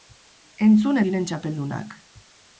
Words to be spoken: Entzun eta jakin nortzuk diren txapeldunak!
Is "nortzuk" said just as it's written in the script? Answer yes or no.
no